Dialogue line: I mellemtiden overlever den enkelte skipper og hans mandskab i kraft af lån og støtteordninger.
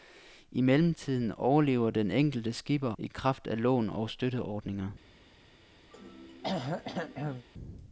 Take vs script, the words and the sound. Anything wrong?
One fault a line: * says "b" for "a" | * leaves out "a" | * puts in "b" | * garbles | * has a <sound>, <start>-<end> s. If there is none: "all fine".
* leaves out "og hans mandskab"
* has a throat clearing, 5.9-7.5 s